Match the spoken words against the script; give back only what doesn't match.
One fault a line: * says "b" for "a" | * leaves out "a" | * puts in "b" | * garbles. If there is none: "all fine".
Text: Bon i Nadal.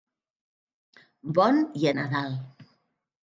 all fine